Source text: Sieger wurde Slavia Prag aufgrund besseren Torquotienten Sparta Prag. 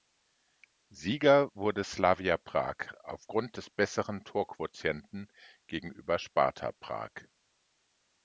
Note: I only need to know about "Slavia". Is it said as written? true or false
true